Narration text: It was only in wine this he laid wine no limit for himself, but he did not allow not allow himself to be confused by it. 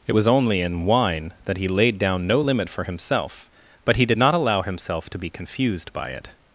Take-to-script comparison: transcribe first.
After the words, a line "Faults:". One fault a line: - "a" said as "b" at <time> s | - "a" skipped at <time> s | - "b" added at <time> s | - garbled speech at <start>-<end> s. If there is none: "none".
It was only in wine that he laid down no limit for himself, but he did not allow himself to be confused by it.
Faults:
- "this" said as "that" at 1.4 s
- "wine" said as "down" at 2.0 s
- "not allow" skipped at 4.6 s